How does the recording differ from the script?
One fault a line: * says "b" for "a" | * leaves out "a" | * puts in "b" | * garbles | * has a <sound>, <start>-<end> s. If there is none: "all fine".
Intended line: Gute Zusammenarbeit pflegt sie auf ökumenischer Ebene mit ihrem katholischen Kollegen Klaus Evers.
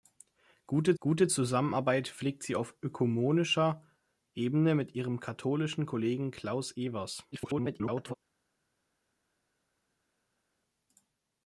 * puts in "gute"
* garbles